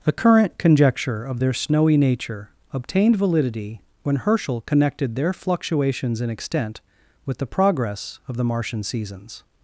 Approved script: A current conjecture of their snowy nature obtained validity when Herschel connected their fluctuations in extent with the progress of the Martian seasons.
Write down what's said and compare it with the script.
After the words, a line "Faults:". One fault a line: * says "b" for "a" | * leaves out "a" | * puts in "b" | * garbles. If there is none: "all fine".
The current conjecture of their snowy nature obtained validity when Herschel connected their fluctuations in extent with the progress of the Martian seasons.
Faults:
* says "The" for "A"